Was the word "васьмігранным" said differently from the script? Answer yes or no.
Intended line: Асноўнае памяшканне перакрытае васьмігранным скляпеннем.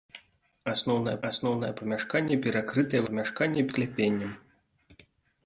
yes